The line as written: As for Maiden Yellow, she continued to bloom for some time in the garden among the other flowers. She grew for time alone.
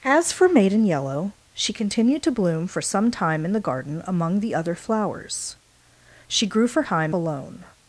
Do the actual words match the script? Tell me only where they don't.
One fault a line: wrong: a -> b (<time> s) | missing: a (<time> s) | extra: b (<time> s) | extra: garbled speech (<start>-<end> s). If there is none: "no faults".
no faults